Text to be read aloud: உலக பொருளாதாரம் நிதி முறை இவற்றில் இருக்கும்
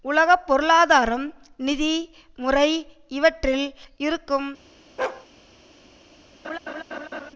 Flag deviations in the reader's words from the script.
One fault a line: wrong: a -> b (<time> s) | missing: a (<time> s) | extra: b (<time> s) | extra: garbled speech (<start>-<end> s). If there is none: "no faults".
no faults